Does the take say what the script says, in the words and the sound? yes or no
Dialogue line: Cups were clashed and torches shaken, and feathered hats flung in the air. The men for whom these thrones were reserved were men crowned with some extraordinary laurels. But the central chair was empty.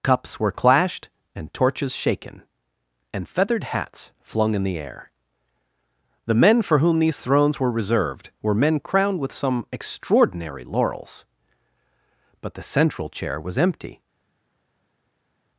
yes